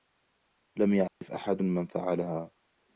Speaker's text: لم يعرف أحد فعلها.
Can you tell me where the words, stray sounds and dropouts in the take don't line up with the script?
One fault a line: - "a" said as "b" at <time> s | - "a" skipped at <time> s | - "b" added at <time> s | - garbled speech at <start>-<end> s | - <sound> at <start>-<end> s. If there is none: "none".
- dropout at 1.1-1.2 s
- "من" added at 1.6 s